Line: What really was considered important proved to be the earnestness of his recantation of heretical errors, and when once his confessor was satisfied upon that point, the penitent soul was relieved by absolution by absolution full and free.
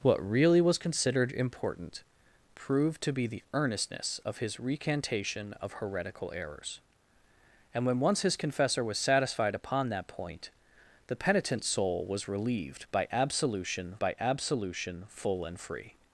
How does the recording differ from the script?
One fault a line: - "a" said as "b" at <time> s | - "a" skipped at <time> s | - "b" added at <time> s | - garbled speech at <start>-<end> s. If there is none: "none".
none